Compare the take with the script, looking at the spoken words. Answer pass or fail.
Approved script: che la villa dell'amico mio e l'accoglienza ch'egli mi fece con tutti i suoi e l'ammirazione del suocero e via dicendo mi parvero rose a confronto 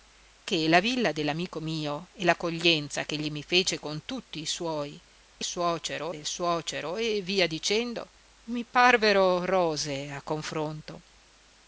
fail